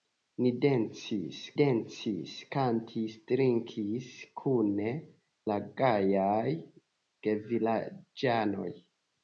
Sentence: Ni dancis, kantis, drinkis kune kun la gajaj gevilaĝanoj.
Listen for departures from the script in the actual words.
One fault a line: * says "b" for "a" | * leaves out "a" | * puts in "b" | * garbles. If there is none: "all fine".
* puts in "dancis"
* leaves out "kun"